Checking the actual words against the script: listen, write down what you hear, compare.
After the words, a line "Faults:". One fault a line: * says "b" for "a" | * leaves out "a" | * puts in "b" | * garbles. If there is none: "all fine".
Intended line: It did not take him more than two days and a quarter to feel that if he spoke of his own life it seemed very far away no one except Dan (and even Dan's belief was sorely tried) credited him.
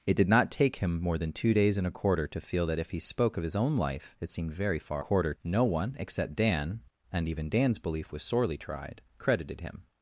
It did not take him more than two days and a quarter to feel that if he spoke of his own life it seemed very far quarter no one except Dan (and even Dan's belief was sorely tried) credited him.
Faults:
* says "quarter" for "away"